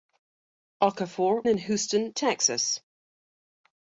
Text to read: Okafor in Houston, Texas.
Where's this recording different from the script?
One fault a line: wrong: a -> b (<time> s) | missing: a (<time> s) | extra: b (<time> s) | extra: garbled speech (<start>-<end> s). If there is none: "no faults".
no faults